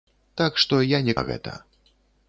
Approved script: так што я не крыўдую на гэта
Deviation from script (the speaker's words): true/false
true